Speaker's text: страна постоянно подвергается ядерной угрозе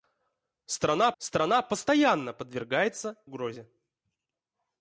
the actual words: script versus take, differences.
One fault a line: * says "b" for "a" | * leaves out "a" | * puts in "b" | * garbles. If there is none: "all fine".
* puts in "страна"
* leaves out "ядерной"